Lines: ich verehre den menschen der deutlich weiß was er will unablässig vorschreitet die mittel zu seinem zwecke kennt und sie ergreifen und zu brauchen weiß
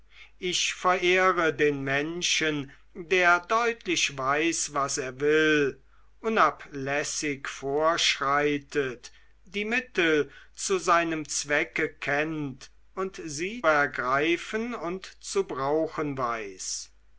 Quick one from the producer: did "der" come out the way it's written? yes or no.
yes